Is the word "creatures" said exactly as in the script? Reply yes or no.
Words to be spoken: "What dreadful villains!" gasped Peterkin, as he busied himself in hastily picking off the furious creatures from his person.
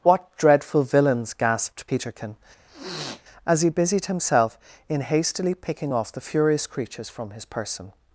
yes